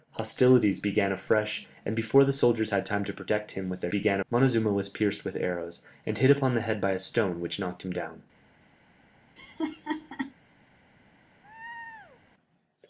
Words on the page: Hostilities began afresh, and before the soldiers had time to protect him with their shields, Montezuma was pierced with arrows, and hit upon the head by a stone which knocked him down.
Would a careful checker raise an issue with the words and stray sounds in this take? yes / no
yes